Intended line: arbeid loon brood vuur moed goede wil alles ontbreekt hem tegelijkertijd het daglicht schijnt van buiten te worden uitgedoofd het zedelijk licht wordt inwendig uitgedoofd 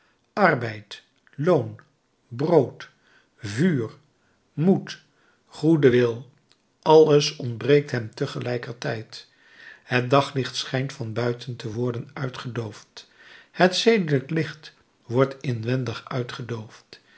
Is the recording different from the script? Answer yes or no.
no